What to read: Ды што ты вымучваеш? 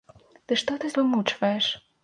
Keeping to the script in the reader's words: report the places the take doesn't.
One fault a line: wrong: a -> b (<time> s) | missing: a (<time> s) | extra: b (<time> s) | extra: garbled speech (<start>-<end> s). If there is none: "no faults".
no faults